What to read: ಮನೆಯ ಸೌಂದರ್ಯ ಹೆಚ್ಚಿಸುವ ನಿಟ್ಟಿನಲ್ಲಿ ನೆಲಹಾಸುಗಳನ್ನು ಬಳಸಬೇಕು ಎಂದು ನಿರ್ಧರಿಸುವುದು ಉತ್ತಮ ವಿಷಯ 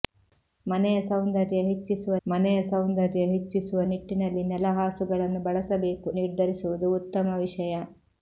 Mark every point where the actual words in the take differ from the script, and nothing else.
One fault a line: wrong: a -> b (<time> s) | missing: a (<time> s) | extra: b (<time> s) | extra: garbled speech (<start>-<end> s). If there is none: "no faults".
extra: ಮನೆಯ ಸೌಂದರ್ಯ ಹೆಚ್ಚಿಸುವ (2.2 s)
missing: ಎಂದು (6.1 s)